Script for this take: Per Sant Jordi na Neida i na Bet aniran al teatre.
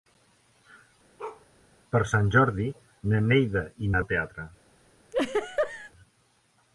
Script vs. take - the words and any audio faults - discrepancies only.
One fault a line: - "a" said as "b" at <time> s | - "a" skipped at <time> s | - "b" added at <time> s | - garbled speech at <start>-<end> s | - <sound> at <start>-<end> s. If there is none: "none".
- bark at 1.2-1.5 s
- "Bet aniran" skipped at 4.0 s
- laugh at 5.1-5.9 s